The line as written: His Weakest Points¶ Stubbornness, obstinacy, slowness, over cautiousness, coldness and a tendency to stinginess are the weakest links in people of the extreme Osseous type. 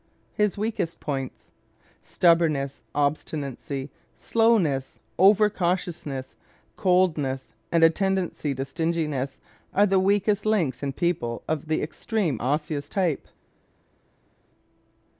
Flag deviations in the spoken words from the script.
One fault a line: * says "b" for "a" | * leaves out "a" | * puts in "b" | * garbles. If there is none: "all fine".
all fine